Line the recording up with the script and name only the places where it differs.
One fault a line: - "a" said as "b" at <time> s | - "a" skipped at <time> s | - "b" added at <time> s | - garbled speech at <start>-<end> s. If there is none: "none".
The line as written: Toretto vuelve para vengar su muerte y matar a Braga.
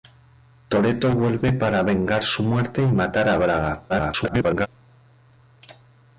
- garbled speech at 3.9-4.7 s